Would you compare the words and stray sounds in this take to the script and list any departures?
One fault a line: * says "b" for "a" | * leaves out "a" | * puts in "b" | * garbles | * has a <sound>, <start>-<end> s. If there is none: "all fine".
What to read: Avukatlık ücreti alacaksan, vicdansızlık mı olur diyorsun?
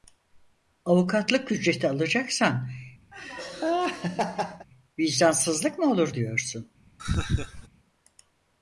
* has a laugh, 3.1-4.7 s
* has a laugh, 7.0-7.7 s